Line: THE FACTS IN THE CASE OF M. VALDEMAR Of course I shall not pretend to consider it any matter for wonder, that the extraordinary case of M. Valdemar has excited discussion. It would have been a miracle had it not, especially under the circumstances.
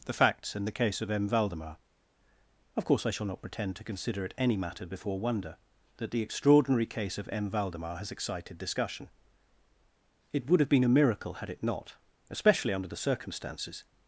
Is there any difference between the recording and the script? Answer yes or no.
yes